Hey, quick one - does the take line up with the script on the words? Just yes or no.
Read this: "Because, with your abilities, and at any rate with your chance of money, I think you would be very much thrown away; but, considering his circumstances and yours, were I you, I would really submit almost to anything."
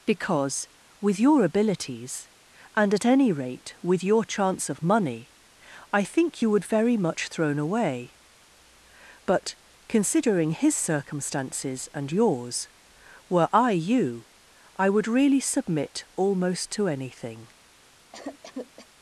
no